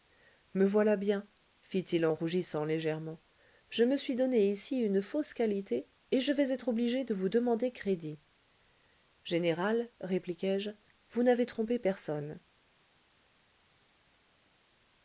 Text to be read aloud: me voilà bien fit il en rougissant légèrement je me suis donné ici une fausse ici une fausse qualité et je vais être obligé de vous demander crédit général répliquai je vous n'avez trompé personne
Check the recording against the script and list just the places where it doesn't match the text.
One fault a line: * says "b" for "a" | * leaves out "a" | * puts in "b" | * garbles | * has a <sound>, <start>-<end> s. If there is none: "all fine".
* leaves out "ici une fausse"